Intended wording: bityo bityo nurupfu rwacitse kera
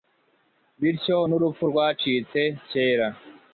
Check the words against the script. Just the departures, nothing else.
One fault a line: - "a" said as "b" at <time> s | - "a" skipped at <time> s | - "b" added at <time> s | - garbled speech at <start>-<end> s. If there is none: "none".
- "bityo" skipped at 1.2 s